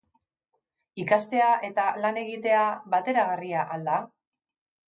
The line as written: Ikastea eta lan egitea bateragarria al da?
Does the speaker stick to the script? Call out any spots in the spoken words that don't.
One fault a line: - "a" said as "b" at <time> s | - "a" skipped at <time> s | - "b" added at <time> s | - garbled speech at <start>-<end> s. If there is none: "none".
none